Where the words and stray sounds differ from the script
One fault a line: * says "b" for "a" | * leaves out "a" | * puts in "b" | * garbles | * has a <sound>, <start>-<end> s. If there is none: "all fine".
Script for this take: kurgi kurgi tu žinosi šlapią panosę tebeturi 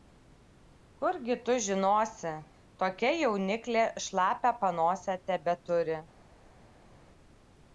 * leaves out "kurgi"
* puts in "tokia jauniklė"